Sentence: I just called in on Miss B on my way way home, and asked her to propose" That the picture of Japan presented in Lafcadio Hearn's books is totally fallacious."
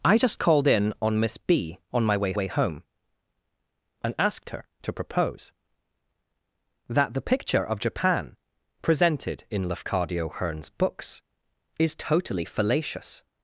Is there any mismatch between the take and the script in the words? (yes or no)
no